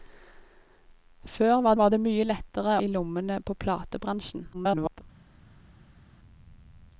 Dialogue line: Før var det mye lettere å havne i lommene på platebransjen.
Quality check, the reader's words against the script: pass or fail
fail